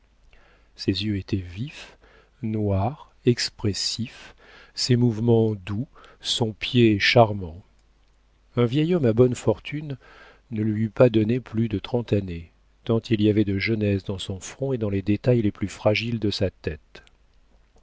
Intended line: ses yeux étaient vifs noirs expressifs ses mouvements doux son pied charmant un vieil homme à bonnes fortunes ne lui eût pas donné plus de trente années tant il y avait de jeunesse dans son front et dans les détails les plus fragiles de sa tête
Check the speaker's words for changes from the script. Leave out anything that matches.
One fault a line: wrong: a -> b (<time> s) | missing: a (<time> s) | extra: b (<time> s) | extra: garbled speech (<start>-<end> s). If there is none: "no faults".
no faults